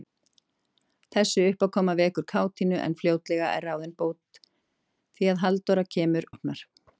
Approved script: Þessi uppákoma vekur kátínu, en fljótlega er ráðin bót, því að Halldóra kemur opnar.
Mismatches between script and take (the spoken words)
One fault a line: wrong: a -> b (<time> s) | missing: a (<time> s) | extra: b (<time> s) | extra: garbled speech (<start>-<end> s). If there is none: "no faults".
no faults